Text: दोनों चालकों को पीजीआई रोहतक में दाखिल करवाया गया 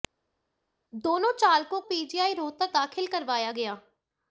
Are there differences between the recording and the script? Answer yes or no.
yes